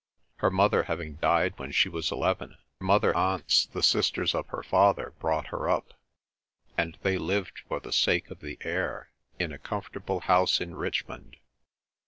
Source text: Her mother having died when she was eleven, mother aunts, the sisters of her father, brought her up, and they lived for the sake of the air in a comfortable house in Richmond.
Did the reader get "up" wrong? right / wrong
right